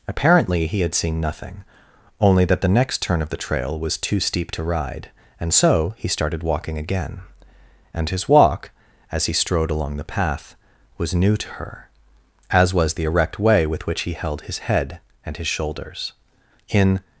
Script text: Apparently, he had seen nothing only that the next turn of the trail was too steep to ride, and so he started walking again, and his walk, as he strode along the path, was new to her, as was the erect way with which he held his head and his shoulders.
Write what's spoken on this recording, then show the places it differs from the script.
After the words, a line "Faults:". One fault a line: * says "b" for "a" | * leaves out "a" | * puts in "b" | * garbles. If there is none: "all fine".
Apparently, he had seen nothing only that the next turn of the trail was too steep to ride, and so he started walking again, and his walk, as he strode along the path, was new to her, as was the erect way with which he held his head and his shoulders. In
Faults:
* puts in "In"